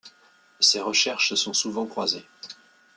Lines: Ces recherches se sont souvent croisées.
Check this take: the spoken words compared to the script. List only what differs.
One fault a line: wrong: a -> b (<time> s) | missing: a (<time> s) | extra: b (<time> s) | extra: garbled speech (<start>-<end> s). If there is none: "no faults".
no faults